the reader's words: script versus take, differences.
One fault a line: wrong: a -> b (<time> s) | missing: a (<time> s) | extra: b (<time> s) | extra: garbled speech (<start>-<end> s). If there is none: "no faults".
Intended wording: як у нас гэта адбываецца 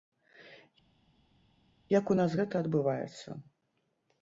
no faults